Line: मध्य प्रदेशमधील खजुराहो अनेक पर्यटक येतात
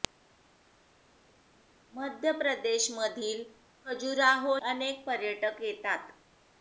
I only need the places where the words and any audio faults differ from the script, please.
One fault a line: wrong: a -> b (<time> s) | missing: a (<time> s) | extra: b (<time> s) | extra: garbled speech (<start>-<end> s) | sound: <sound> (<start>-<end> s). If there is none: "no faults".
no faults